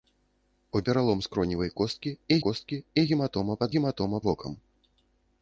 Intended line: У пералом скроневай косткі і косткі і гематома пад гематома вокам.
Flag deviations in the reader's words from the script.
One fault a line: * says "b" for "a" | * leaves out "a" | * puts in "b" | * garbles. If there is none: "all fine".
all fine